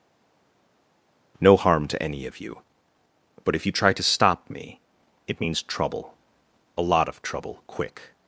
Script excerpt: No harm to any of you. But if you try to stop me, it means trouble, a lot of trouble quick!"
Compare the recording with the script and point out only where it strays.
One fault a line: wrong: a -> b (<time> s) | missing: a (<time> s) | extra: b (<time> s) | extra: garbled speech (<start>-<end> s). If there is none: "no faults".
no faults